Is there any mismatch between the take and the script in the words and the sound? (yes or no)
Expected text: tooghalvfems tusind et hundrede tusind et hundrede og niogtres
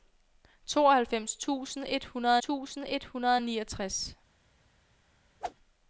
yes